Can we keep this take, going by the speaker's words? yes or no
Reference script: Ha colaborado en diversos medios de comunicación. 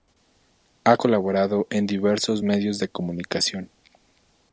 yes